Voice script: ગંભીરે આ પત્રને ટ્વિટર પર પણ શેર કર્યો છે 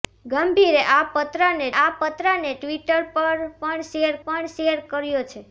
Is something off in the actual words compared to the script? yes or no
yes